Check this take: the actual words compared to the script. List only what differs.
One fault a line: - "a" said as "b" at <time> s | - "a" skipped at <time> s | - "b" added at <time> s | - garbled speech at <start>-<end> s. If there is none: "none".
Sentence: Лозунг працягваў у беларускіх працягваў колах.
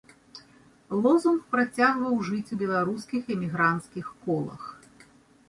- "жыць" added at 2.3 s
- "працягваў" said as "эмігранцкіх" at 3.4 s